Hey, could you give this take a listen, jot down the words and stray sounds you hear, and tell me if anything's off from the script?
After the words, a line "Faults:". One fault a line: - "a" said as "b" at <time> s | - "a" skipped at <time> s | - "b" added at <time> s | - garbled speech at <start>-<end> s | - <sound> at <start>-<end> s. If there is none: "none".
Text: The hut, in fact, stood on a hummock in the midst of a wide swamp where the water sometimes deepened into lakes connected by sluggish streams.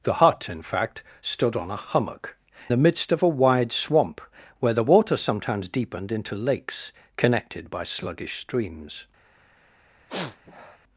The hut, in fact, stood on a hummock the midst of a wide swamp where the water sometimes deepened into lakes connected by sluggish streams.
Faults:
- "in" skipped at 2.4 s
- sniff at 10.1-10.8 s